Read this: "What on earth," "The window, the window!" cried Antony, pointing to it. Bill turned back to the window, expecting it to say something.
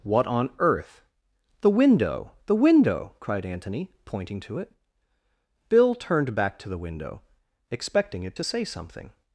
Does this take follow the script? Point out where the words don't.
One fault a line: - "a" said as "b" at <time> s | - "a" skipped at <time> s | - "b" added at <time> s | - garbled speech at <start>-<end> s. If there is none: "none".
none